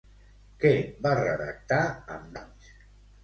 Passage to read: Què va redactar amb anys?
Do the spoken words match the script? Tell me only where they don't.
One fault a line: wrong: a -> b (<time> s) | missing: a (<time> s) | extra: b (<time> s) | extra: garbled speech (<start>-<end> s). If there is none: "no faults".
no faults